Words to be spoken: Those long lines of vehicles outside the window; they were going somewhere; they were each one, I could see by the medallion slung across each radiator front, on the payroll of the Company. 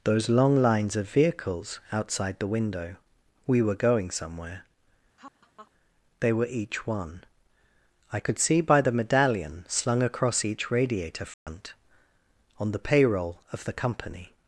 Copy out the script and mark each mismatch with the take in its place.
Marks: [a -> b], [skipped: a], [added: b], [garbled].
Those long lines of vehicles outside the window; [they -> we] were going somewhere; they were each one, I could see by the medallion slung across each radiator front, on the payroll of the Company.